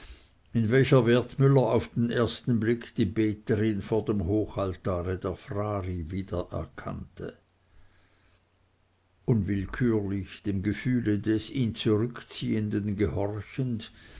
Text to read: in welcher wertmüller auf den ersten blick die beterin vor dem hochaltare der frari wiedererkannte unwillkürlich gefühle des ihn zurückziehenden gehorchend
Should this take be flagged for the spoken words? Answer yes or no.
yes